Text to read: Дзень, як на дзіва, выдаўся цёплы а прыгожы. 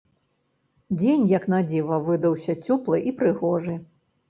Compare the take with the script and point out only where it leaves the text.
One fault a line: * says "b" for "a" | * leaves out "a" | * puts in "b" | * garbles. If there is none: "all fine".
* says "і" for "а"